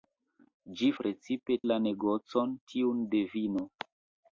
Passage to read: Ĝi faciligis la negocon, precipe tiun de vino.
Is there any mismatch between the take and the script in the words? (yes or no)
yes